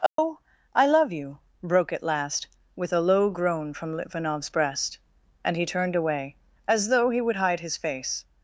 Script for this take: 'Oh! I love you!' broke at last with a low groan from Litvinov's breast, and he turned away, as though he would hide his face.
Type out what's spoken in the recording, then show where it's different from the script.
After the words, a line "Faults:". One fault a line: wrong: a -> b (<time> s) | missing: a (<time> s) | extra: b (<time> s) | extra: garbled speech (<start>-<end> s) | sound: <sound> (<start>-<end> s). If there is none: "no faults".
'Oh! I love you!' broke at last with a low groan from Litvinov's breast, and he turned away, as though he would hide his face.
Faults:
sound: dropout (0.1-0.2 s)